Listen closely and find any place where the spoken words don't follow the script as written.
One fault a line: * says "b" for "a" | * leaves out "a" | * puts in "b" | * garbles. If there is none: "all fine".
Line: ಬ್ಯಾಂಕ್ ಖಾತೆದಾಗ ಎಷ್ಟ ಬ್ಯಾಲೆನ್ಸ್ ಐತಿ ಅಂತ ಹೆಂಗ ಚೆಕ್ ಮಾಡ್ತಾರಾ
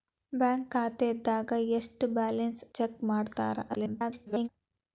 * leaves out "ಐತಿ ಅಂತ ಹೆಂಗ"
* garbles